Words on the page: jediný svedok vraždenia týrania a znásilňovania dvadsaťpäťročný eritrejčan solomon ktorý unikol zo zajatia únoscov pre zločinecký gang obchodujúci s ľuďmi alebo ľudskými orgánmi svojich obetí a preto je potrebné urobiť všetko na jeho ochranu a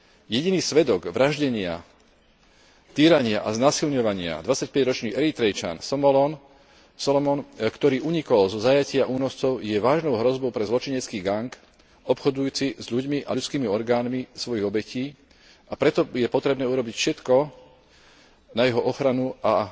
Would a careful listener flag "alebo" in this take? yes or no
yes